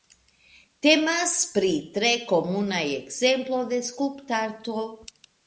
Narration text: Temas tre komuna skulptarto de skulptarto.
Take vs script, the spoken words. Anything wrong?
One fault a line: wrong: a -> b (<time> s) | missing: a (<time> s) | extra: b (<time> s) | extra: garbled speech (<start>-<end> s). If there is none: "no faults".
extra: pri (1.5 s)
wrong: skulptarto -> ekzemplo (2.9 s)